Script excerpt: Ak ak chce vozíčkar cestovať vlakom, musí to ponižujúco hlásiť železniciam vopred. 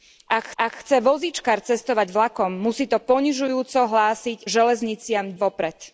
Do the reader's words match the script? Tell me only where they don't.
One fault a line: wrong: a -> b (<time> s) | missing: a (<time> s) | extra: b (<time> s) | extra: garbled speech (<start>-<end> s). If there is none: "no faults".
no faults